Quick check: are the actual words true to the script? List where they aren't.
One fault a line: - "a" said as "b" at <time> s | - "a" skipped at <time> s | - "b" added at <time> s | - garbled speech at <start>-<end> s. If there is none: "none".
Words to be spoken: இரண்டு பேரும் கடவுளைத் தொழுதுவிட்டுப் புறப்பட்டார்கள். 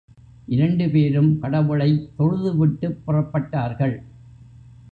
none